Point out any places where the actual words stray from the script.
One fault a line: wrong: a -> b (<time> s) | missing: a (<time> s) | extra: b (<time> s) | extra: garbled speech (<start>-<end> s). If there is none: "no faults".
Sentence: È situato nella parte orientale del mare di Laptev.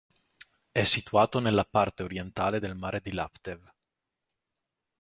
no faults